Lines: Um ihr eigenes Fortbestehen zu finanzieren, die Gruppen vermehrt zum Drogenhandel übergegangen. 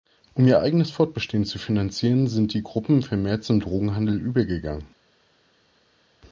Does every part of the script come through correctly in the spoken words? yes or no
no